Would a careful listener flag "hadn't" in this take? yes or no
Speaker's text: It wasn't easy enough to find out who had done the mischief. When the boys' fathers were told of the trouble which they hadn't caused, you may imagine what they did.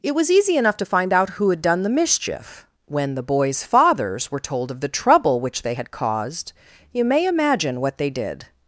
yes